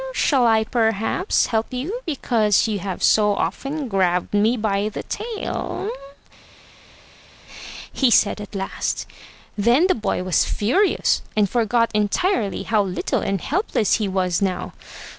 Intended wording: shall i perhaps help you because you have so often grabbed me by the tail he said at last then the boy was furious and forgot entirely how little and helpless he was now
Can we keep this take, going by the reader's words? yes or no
yes